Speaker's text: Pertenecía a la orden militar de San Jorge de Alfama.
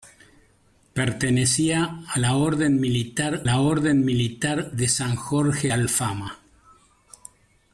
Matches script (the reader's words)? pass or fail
fail